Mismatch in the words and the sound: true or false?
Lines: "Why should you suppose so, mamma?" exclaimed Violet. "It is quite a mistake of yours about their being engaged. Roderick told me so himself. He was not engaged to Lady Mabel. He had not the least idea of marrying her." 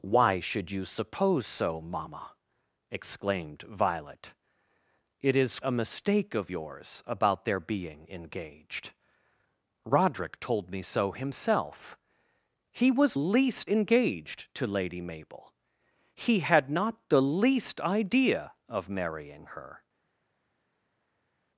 true